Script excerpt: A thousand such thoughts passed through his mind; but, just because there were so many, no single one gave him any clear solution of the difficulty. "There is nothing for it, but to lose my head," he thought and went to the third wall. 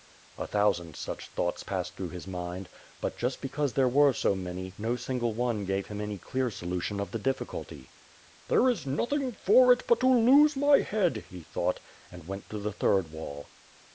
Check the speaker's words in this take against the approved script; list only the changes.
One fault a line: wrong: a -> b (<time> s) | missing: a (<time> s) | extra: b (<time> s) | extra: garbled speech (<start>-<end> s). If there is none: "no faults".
no faults